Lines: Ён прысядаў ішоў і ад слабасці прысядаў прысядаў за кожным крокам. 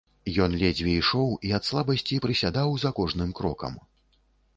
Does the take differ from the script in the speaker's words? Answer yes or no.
yes